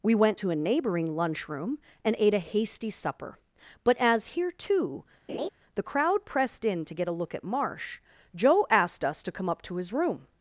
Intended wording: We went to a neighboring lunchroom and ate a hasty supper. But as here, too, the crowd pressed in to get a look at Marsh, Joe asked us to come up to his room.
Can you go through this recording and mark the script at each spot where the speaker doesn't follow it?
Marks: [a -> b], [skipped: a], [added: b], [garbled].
We went to a neighboring lunchroom and ate a hasty supper. But as here, too, the crowd pressed in to get a look at Marsh, Joe asked us to come up to his room.